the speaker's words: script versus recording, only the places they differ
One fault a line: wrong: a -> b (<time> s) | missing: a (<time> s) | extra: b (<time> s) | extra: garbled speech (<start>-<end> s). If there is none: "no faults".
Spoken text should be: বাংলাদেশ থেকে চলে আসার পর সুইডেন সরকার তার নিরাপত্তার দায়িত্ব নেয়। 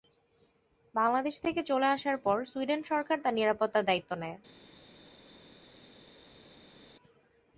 no faults